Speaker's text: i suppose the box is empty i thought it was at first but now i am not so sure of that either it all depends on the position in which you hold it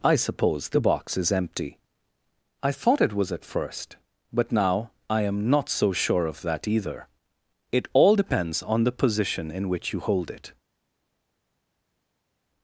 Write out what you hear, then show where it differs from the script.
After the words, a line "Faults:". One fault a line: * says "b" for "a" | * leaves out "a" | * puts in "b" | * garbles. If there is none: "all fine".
i suppose the box is empty i thought it was at first but now i am not so sure of that either it all depends on the position in which you hold it
Faults:
all fine